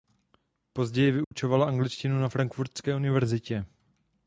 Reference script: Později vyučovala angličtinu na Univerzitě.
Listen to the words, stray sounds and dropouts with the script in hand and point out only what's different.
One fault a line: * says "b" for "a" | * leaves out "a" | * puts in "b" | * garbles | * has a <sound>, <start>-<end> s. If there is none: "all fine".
* has a dropout, 1.2-1.3 s
* puts in "Frankfurtské"